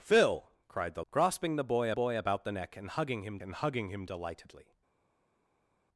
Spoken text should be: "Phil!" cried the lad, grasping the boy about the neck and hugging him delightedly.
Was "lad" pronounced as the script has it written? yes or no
no